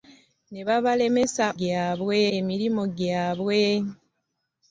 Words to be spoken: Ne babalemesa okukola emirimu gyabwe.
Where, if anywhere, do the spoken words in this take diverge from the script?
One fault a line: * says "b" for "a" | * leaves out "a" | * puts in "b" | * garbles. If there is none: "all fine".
* says "gyabwe" for "okukola"